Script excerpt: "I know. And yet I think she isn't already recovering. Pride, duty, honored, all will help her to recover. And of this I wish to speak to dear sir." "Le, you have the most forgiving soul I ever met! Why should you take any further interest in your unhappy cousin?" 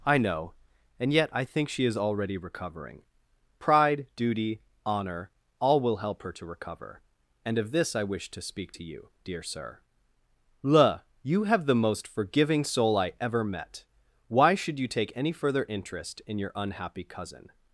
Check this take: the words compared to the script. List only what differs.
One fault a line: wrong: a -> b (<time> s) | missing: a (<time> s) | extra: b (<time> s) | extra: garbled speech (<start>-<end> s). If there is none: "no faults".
wrong: isn't -> is (1.9 s)
wrong: honored -> honor (4.8 s)
extra: you (8.8 s)